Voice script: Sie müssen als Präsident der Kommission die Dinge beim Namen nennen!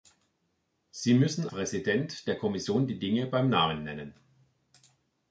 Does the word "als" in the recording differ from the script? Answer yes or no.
yes